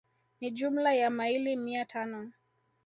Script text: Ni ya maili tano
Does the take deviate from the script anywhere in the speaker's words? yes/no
yes